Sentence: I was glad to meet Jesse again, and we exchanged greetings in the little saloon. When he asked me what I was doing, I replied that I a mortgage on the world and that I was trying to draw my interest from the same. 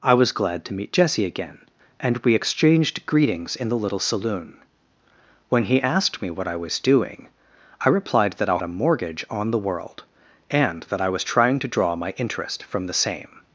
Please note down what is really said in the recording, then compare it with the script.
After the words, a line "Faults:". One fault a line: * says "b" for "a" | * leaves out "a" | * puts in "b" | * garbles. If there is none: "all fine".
I was glad to meet Jesse again, and we exchanged greetings in the little saloon. When he asked me what I was doing, I replied that I a mortgage on the world and that I was trying to draw my interest from the same.
Faults:
all fine